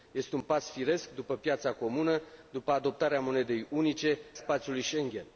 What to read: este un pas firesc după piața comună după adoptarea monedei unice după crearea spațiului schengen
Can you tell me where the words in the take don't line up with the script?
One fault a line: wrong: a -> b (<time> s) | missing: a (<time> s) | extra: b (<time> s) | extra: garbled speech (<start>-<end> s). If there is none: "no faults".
missing: după crearea (4.2 s)